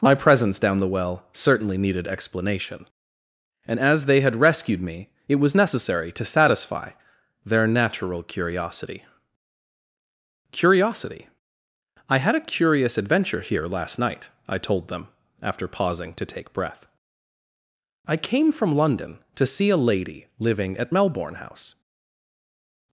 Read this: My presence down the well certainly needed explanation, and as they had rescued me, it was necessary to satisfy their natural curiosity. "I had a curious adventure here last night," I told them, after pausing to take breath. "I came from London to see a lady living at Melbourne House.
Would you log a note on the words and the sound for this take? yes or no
yes